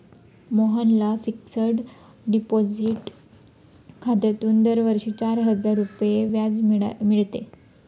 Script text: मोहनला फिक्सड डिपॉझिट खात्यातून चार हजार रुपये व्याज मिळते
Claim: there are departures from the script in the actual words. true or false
true